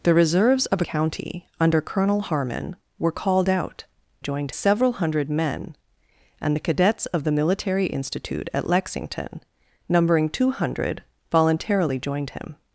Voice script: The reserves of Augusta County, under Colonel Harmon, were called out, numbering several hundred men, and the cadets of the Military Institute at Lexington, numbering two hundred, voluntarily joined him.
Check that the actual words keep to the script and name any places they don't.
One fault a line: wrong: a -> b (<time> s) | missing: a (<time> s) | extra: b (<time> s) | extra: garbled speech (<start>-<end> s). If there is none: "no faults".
missing: Augusta (0.8 s)
wrong: numbering -> joined (4.2 s)